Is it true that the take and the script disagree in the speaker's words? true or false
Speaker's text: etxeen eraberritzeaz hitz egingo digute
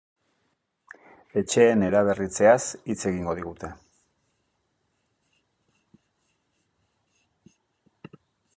false